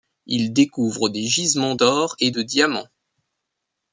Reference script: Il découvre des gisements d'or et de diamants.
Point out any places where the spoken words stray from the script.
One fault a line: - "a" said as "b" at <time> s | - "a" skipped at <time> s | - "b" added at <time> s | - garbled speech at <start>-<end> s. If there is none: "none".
none